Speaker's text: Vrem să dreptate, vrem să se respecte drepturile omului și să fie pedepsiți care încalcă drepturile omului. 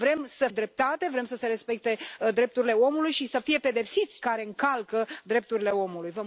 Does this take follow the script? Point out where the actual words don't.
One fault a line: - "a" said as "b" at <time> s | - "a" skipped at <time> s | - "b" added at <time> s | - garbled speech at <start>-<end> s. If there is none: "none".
none